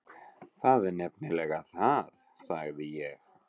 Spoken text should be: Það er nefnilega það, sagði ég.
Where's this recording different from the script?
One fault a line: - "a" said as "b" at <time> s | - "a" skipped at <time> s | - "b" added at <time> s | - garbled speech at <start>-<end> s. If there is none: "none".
none